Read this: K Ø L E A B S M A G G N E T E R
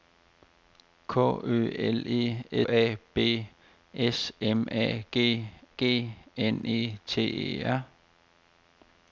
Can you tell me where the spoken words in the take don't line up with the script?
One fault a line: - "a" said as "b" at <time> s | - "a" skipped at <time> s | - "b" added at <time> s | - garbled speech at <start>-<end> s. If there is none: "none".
none